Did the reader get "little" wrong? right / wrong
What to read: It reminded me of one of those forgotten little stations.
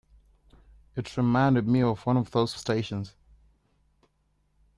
wrong